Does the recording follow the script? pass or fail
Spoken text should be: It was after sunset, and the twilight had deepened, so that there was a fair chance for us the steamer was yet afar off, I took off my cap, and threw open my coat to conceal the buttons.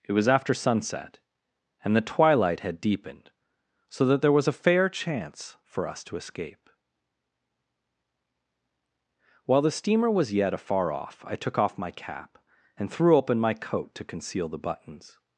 fail